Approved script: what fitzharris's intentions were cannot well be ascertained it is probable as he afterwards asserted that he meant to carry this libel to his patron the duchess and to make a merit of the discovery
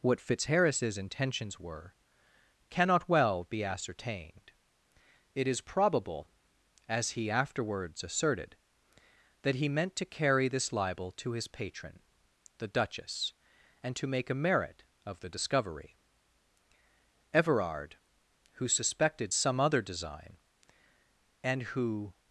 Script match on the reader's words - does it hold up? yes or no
no